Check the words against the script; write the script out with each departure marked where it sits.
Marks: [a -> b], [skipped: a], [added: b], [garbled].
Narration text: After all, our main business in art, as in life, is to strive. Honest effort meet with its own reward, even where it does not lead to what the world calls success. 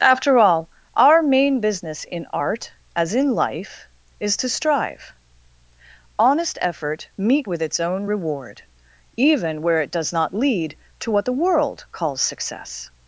After all, our main business in art, as in life, is to strive. Honest effort meet with its own reward, even where it does not lead to what the world calls success.